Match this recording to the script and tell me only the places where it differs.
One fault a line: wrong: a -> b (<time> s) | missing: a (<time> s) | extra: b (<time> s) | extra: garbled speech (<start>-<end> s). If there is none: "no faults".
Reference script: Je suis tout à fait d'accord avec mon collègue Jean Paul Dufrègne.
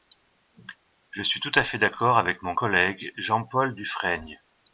no faults